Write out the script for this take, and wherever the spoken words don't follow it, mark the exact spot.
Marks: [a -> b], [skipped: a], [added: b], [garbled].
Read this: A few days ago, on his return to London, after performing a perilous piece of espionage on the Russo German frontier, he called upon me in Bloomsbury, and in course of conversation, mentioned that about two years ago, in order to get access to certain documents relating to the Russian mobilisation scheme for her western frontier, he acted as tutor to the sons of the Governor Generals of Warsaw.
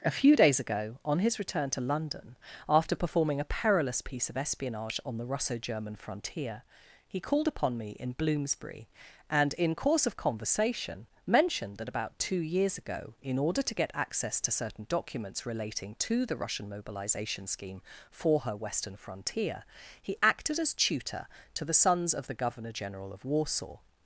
A few days ago, on his return to London, after performing a perilous piece of espionage on the Russo German frontier, he called upon me in Bloomsbury, and in course of conversation, mentioned that about two years ago, in order to get access to certain documents relating to the Russian mobilisation scheme for her western frontier, he acted as tutor to the sons of the Governor [Generals -> General] of Warsaw.